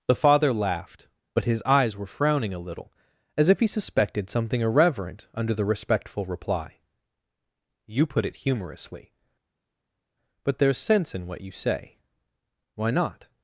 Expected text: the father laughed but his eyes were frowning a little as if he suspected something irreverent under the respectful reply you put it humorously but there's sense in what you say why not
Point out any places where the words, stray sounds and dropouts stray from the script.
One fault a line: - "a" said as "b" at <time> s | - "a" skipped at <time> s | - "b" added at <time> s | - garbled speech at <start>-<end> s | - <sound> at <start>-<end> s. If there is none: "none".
none